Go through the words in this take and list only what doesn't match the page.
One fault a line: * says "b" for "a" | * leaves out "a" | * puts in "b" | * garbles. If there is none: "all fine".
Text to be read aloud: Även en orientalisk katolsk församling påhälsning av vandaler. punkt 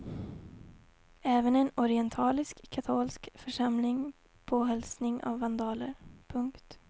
all fine